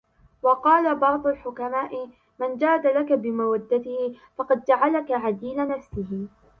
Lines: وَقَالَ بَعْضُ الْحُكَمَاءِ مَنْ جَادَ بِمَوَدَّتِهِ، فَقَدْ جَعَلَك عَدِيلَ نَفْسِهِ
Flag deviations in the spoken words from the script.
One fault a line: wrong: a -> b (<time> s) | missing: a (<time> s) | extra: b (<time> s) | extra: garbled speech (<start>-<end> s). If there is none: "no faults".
extra: لَك (2.9 s)